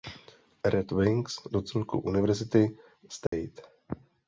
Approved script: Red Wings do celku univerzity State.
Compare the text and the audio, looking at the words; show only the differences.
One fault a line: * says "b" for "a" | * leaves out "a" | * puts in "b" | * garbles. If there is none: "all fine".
all fine